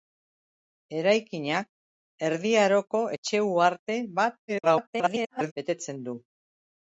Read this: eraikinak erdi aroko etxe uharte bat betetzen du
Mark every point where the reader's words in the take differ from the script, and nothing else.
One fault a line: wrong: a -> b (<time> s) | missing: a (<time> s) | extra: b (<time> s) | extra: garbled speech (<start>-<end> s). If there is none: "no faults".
extra: garbled speech (4.5-5.5 s)